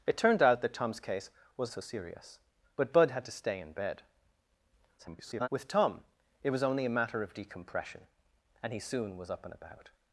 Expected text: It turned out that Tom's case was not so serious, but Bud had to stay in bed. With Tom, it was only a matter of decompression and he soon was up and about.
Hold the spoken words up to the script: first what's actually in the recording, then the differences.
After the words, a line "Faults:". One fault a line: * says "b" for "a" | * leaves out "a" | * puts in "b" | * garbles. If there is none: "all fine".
It turned out that Tom's case was so serious, but Bud had to stay in bed. [garbled] With Tom, it was only a matter of decompression and he soon was up and about.
Faults:
* leaves out "not"
* garbles